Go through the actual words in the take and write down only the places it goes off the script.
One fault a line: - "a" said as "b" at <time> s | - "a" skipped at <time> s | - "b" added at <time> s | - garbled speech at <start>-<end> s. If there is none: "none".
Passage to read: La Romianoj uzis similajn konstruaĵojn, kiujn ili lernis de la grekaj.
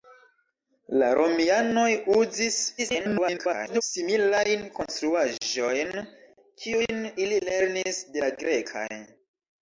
- garbled speech at 2.8-3.8 s